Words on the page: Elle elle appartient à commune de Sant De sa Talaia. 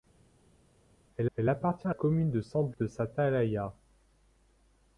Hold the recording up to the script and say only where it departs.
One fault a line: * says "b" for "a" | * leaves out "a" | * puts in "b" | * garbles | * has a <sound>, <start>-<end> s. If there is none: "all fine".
all fine